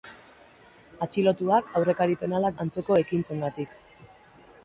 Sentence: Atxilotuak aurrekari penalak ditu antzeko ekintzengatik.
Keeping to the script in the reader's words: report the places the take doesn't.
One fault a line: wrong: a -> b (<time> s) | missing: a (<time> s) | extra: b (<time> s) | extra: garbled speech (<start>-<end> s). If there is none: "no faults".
missing: ditu (2.6 s)